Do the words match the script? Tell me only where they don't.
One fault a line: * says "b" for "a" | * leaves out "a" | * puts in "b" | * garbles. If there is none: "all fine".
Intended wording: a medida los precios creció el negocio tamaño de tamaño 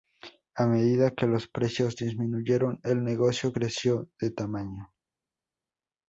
* puts in "que"
* says "disminuyeron" for "creció"
* says "creció" for "tamaño"